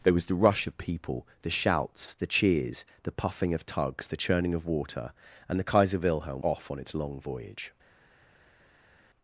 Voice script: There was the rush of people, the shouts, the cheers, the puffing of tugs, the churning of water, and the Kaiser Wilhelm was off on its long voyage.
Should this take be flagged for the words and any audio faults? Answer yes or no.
yes